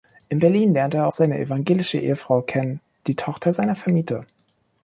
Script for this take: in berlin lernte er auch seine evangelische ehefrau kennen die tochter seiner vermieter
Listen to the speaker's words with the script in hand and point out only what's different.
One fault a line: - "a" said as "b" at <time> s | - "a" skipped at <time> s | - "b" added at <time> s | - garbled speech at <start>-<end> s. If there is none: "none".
- "auch" skipped at 1.1 s